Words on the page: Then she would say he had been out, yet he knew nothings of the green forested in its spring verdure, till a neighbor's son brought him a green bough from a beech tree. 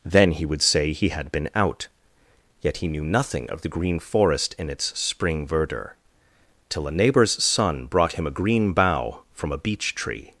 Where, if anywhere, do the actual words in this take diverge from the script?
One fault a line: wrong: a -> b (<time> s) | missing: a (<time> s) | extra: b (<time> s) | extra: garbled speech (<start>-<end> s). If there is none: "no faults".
wrong: she -> he (0.3 s)
wrong: nothings -> nothing (3.0 s)
wrong: forested -> forest (4.0 s)